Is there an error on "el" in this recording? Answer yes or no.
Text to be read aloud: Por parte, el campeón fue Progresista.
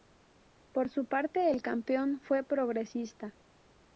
no